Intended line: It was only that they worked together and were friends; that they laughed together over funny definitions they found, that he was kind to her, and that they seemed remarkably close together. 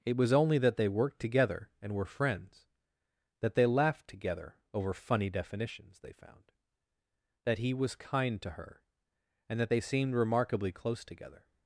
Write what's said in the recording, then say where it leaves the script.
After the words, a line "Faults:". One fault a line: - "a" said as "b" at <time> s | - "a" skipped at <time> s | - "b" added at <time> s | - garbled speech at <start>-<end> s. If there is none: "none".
It was only that they worked together and were friends; that they laughed together over funny definitions they found, that he was kind to her, and that they seemed remarkably close together.
Faults:
none